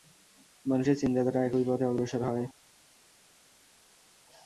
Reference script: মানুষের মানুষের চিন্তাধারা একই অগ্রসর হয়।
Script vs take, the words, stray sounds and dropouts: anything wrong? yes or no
yes